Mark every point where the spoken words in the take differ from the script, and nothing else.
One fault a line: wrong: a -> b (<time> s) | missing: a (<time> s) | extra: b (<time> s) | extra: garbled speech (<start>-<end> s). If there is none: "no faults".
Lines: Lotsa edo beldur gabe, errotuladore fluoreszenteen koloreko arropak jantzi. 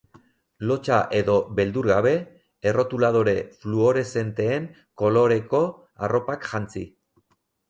no faults